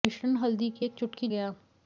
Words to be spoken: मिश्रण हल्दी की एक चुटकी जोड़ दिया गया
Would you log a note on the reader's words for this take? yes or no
yes